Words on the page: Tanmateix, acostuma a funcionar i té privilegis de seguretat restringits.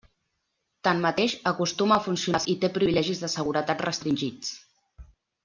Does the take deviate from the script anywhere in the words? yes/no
no